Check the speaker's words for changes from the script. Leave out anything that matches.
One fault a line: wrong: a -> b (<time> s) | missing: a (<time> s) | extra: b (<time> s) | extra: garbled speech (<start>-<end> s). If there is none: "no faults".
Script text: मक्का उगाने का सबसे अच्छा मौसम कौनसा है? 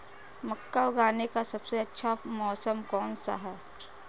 no faults